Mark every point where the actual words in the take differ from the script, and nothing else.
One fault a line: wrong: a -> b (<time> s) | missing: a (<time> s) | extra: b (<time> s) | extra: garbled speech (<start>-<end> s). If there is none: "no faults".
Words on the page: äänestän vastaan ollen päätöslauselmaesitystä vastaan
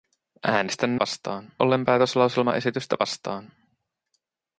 no faults